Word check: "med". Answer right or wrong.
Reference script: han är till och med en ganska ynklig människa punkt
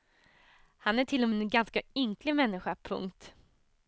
wrong